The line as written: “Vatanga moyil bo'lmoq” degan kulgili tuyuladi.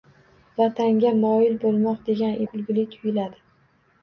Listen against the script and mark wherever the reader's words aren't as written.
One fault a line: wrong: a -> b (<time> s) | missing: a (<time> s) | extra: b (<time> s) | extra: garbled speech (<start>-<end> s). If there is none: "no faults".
no faults